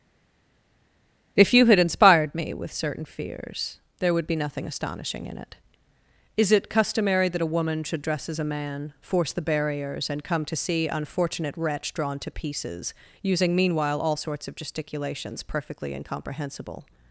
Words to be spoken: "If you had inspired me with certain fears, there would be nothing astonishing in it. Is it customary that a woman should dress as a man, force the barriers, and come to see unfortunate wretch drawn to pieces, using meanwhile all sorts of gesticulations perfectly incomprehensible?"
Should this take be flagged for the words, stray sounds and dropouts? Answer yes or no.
no